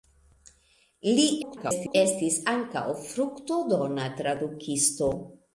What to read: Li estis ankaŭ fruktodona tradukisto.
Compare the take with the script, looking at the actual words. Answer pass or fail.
fail